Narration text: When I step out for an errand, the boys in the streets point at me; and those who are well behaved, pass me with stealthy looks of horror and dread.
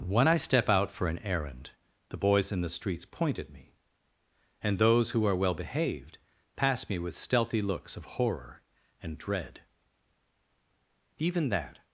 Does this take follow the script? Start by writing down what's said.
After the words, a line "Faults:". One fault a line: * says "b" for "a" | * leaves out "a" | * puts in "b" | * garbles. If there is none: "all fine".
When I step out for an errand, the boys in the streets point at me; and those who are well behaved, pass me with stealthy looks of horror and dread. Even that
Faults:
* puts in "Even that"